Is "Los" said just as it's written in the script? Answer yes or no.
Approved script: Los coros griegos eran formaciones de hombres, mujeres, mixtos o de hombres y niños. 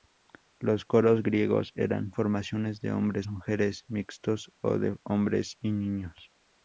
yes